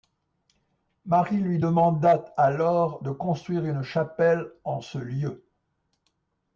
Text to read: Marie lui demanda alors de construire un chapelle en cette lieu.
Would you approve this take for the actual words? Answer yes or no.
no